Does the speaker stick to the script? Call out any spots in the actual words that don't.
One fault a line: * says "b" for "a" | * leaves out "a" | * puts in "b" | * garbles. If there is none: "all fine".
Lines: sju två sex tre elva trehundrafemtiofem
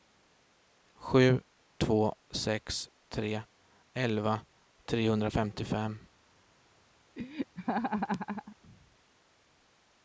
all fine